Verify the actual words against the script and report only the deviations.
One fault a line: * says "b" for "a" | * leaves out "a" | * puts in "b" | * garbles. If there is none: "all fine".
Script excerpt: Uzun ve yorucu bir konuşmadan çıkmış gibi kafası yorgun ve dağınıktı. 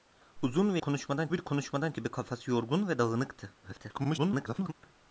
* says "konuşmadan" for "yorucu"
* leaves out "çıkmış"
* garbles